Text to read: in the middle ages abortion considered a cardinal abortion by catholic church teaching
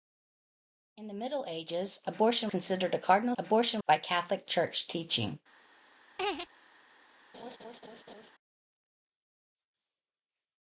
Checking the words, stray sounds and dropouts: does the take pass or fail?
fail